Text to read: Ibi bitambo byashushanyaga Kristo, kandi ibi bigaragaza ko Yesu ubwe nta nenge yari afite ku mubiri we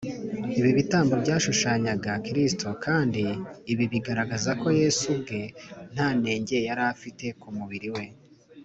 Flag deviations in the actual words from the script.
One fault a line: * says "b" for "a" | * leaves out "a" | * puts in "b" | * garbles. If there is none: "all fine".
all fine